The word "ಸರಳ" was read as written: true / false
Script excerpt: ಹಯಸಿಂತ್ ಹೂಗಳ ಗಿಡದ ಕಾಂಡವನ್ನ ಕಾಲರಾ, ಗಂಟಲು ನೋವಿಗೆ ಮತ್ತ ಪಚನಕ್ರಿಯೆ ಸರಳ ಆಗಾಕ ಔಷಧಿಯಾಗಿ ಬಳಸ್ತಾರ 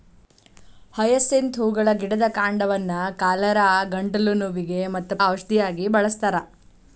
false